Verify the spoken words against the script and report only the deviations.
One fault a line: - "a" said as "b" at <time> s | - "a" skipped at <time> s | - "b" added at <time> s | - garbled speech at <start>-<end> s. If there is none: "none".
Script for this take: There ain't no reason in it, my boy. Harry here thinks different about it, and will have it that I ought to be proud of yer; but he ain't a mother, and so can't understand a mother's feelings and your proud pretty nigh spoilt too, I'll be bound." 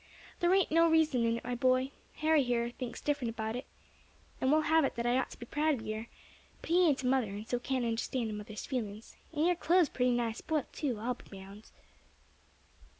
- "proud" said as "clothes" at 9.6 s